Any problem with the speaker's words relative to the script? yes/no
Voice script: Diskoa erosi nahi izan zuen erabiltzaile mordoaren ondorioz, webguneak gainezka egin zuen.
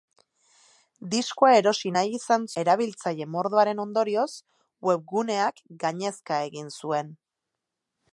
yes